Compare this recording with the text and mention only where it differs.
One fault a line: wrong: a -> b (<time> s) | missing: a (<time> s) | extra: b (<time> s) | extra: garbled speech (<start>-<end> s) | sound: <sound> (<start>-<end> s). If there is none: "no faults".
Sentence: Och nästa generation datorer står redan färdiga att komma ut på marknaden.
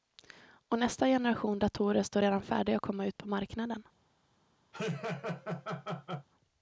sound: laugh (4.7-6.3 s)